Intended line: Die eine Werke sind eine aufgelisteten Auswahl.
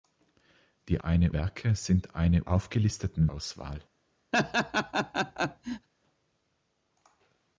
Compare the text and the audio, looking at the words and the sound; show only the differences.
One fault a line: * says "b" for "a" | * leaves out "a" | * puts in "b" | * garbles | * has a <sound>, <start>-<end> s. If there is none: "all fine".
* has a laugh, 4.3-5.9 s